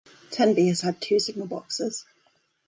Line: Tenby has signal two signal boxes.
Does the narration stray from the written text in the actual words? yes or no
yes